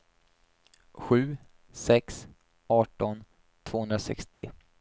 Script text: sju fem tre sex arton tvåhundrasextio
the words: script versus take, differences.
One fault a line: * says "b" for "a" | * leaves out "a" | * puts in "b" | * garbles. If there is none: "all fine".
* leaves out "fem tre"